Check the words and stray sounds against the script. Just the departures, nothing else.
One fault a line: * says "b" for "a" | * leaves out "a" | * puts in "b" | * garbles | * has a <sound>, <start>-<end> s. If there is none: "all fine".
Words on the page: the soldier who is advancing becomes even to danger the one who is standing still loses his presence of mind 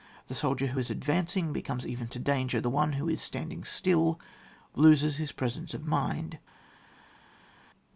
all fine